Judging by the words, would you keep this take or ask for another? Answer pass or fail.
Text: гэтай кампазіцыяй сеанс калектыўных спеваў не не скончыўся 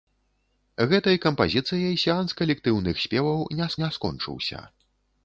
pass